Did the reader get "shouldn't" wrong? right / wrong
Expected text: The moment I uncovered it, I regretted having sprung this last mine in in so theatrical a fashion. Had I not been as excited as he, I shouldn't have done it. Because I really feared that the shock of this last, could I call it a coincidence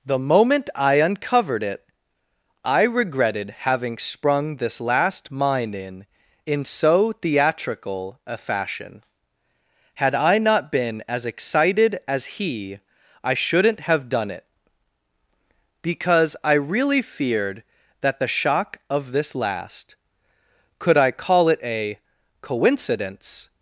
right